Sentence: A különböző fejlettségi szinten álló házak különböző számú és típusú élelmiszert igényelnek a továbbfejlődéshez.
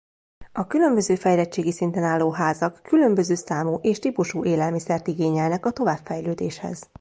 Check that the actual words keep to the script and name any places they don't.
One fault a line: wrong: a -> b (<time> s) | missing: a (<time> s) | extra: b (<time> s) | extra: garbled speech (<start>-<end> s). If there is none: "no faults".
no faults